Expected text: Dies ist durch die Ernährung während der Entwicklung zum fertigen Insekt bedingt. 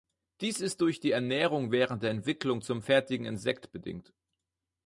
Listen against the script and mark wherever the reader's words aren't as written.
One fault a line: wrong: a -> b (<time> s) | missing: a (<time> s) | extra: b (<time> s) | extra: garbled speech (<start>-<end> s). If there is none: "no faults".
no faults